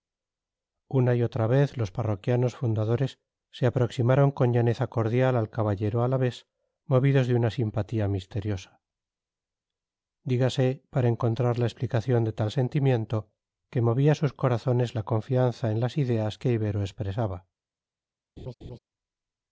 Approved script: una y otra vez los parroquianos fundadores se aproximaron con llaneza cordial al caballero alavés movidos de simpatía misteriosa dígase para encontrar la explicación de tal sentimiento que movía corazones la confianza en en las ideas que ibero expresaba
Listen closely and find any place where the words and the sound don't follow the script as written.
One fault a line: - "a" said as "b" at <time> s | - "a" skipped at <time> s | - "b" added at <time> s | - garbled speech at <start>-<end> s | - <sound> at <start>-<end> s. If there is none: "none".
- "una" added at 7.3 s
- "sus" added at 14.1 s
- "en" skipped at 15.8 s
- laugh at 18.4-18.8 s